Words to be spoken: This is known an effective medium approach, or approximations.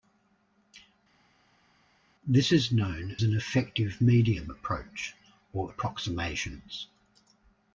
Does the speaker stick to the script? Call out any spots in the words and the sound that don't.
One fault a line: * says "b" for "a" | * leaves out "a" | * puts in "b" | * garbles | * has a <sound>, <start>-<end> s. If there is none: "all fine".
all fine